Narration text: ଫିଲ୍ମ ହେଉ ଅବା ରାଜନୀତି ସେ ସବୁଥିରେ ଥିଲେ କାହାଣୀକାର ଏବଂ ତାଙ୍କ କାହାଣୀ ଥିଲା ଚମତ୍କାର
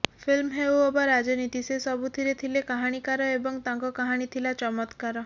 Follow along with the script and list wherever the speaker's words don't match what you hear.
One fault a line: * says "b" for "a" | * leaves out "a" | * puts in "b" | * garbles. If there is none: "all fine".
all fine